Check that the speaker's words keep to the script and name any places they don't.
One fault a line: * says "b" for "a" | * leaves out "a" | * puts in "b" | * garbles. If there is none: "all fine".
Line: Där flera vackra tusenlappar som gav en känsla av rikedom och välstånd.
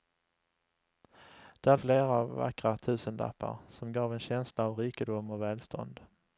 all fine